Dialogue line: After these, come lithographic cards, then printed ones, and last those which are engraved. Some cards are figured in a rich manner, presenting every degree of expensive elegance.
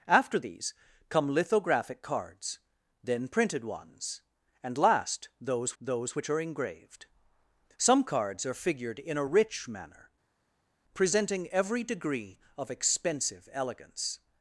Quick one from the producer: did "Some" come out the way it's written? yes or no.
yes